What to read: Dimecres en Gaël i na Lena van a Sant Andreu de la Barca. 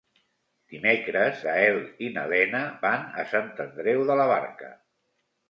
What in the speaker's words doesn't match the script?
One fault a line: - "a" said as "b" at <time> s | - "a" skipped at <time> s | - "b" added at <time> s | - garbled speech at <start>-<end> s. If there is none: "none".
- "en" skipped at 1.4 s